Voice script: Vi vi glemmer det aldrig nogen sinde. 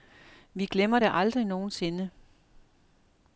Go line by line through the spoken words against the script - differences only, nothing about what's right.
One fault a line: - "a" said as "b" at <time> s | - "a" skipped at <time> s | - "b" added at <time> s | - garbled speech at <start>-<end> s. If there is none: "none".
- "vi" skipped at 0.7 s